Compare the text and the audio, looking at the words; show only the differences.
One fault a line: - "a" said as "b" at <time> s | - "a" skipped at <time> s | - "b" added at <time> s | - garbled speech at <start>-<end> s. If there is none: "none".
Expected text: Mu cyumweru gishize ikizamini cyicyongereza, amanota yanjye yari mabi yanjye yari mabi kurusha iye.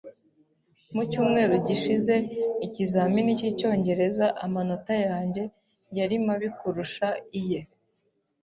- "yanjye yari mabi" skipped at 6.5 s